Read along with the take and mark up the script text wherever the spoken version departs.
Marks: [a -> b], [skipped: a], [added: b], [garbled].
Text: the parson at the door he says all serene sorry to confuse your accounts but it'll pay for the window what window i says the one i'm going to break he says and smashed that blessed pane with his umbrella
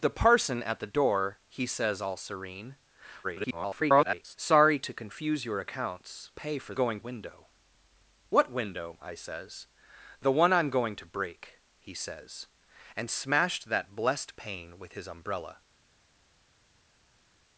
the parson at the door he says all serene [garbled] sorry to confuse your accounts [skipped: but it'll] pay for [the -> going] window what window i says the one i'm going to break he says and smashed that blessed pane with his umbrella